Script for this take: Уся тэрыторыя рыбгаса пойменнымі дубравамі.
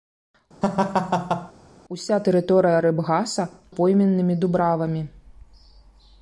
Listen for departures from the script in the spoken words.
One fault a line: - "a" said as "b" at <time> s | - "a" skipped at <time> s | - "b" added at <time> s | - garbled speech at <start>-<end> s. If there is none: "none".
none